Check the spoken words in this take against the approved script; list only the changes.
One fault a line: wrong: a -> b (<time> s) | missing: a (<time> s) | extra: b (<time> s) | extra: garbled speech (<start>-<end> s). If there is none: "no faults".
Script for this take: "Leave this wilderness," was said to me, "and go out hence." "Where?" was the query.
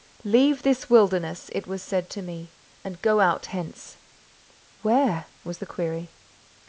extra: it (1.5 s)